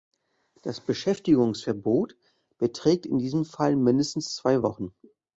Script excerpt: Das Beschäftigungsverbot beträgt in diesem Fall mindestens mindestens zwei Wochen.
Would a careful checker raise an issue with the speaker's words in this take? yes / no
yes